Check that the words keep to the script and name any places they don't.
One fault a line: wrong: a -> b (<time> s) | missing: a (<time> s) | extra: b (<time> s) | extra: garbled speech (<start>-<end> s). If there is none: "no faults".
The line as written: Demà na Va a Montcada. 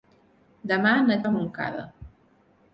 no faults